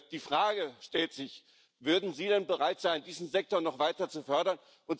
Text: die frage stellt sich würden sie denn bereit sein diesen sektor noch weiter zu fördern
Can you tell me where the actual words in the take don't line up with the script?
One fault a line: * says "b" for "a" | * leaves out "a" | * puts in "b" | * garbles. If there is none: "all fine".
all fine